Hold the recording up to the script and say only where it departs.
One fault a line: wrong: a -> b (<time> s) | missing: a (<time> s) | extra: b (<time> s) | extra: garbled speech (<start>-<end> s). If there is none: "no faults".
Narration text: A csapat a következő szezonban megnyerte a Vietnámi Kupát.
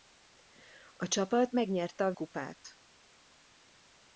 missing: a következő szezonban (1.5 s)
missing: Vietnámi (2.1 s)